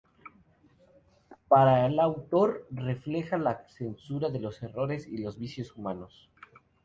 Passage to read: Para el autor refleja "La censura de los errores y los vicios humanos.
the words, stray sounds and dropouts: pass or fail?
pass